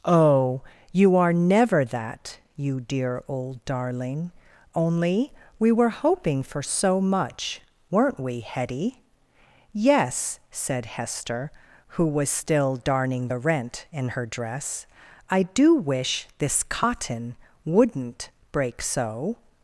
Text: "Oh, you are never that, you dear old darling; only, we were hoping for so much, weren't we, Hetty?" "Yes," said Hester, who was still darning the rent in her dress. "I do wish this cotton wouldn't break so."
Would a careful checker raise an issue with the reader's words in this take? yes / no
no